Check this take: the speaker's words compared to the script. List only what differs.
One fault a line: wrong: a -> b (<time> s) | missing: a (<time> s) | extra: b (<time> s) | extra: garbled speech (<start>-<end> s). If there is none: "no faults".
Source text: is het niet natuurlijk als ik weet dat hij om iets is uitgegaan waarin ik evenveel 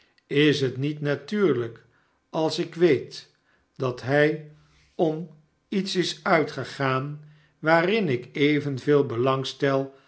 no faults